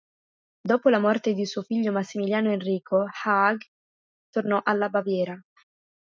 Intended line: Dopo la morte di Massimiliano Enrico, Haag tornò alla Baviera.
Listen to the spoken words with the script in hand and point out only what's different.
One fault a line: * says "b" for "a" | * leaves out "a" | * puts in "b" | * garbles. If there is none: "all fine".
* puts in "suo figlio"